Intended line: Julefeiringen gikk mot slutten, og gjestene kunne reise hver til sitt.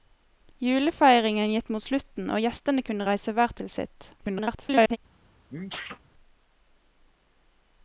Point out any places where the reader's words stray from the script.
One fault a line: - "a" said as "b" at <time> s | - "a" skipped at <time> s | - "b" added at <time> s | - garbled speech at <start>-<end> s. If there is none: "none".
- garbled speech at 4.2-5.0 s